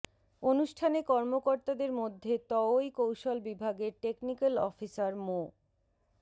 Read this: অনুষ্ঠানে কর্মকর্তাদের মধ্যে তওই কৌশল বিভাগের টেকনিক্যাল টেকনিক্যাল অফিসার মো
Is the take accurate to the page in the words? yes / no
no